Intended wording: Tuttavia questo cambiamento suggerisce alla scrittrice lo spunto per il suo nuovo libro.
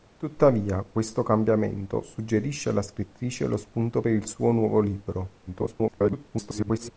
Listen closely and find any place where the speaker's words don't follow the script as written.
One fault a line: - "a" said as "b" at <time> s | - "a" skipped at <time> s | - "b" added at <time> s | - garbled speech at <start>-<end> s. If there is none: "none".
- garbled speech at 5.5-6.9 s